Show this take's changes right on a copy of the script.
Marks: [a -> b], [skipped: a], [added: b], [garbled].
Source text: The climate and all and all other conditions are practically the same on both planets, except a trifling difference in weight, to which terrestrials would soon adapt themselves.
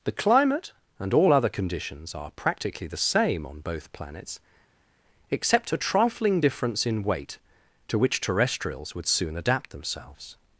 The climate and all [skipped: and all] other conditions are practically the same on both planets, except a trifling difference in weight, to which terrestrials would soon adapt themselves.